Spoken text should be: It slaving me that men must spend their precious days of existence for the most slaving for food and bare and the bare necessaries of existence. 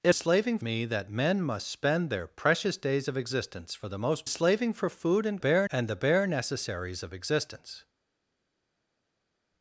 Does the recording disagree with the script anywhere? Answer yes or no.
no